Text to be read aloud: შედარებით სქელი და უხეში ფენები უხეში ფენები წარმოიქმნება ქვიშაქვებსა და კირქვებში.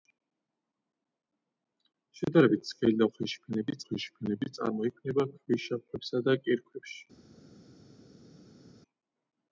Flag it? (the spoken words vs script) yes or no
no